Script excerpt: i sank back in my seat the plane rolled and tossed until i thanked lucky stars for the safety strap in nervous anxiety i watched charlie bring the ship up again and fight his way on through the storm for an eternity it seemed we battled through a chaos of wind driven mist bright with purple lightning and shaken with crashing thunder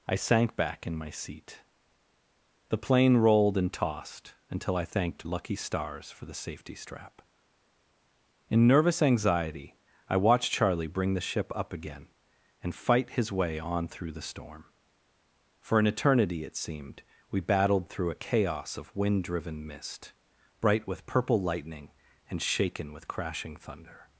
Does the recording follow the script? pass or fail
pass